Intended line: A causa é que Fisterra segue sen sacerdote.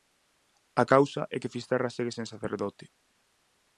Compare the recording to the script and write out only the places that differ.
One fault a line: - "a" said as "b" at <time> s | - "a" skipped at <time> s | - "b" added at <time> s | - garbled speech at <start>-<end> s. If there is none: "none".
none